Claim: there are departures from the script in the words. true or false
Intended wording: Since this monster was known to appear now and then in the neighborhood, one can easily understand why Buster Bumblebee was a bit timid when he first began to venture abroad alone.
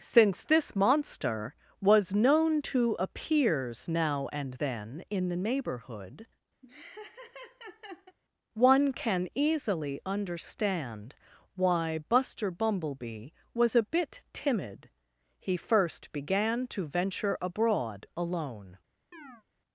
true